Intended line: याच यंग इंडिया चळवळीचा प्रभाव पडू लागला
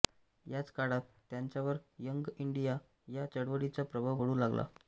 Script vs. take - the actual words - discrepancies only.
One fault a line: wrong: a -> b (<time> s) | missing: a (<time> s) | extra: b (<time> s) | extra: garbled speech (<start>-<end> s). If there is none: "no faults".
extra: काळात त्यांच्यावर (0.7 s)
extra: या (3.1 s)